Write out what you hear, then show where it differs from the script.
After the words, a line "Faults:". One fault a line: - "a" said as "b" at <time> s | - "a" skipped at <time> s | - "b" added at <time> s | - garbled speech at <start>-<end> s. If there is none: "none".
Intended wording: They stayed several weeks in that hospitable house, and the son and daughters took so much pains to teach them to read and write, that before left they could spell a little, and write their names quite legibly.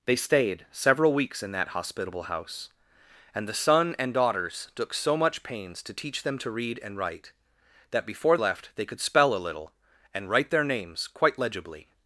They stayed several weeks in that hospitable house, and the son and daughters took so much pains to teach them to read and write, that before left they could spell a little, and write their names quite legibly.
Faults:
none